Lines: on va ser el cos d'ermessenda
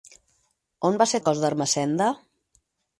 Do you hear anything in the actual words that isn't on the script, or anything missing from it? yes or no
no